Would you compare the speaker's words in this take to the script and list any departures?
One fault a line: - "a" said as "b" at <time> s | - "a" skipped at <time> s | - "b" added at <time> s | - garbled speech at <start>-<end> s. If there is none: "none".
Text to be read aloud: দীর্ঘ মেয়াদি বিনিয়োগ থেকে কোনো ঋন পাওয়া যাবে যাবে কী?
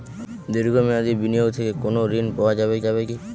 none